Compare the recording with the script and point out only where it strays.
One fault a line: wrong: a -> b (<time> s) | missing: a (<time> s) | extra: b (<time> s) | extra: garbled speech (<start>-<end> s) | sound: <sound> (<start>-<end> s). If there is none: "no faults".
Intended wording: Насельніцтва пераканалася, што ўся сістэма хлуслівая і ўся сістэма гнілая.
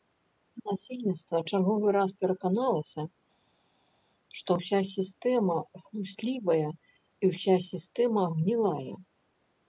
extra: чарговы раз (1.5 s)